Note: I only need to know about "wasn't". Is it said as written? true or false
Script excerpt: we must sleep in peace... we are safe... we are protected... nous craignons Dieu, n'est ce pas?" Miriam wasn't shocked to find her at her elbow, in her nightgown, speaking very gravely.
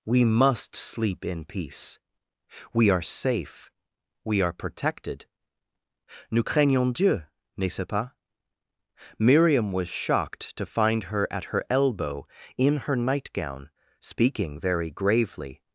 false